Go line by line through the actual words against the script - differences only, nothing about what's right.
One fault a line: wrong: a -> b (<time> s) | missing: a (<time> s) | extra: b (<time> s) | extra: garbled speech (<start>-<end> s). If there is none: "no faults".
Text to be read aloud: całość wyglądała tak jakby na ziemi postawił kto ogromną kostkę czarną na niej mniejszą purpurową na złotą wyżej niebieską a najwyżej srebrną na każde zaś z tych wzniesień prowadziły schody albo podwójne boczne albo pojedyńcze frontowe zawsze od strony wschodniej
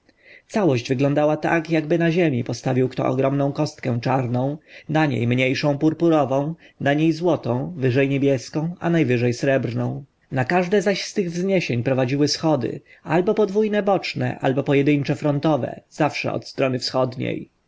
extra: niej (6.9 s)